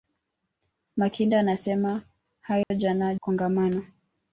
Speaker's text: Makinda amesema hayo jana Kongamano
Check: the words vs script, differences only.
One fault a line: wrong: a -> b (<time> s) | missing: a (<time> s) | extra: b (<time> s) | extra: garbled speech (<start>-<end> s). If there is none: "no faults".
no faults